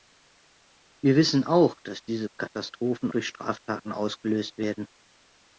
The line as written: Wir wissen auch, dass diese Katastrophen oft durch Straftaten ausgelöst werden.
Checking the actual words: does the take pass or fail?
fail